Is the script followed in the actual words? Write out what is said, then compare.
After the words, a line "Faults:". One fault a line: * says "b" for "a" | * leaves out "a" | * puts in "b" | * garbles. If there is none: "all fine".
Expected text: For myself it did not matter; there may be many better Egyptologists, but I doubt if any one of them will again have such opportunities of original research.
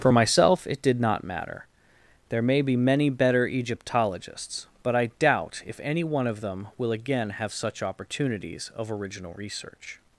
For myself it did not matter; there may be many better Egyptologists, but I doubt if any one of them will again have such opportunities of original research.
Faults:
all fine